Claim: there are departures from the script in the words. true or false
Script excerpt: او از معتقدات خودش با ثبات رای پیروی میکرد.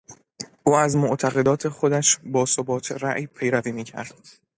false